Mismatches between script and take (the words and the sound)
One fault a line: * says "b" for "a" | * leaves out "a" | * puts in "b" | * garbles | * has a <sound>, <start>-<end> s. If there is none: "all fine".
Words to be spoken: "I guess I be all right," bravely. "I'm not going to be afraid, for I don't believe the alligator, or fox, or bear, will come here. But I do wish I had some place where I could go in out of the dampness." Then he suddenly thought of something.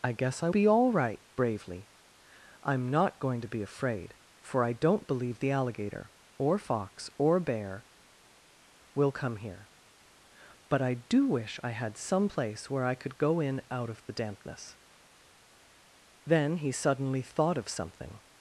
all fine